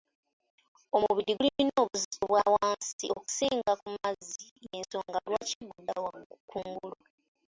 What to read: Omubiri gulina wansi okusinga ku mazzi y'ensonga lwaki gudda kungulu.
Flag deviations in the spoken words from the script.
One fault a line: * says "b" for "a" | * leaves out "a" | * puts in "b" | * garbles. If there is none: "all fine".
* puts in "obuzito bwa"